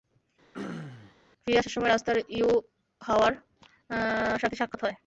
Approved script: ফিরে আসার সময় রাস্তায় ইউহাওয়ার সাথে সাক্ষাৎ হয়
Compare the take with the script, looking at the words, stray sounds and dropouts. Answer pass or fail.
fail